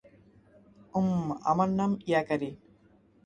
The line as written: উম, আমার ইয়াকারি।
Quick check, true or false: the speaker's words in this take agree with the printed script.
false